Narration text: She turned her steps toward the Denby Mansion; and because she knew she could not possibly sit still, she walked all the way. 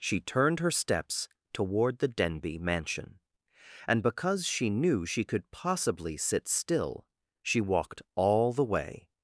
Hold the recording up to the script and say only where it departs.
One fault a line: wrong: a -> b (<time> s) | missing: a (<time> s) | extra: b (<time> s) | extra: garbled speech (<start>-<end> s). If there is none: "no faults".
missing: not (5.5 s)